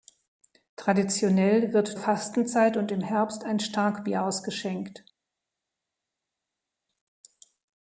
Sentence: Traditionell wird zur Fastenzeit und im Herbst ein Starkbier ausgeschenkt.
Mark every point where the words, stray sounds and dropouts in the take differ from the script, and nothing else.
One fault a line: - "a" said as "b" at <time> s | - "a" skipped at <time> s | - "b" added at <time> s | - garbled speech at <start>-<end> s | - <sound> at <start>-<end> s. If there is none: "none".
- "zur" skipped at 2.0 s